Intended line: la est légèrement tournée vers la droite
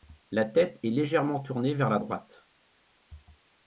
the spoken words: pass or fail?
fail